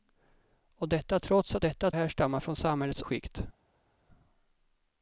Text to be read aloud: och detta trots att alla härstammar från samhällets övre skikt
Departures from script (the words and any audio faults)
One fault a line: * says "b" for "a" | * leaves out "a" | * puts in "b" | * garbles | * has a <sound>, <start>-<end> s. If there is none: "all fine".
* says "detta" for "alla"
* leaves out "övre"